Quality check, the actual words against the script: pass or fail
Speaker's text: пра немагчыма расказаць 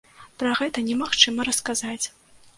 fail